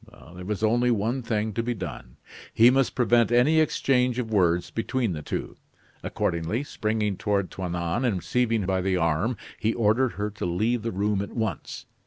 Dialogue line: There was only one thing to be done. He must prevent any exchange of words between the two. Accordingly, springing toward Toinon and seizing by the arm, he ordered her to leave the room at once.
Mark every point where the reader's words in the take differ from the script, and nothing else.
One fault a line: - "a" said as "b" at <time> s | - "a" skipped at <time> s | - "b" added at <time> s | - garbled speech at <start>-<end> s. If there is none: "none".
none